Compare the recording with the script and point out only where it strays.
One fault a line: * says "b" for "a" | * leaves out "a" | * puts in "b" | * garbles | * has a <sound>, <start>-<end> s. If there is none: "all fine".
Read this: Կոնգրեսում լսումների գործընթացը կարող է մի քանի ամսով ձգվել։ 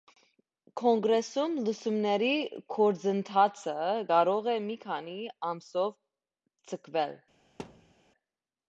* has a thud, 7.6-7.9 s